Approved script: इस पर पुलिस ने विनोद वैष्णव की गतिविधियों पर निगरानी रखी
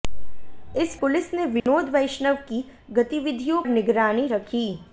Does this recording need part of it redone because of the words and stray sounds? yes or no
yes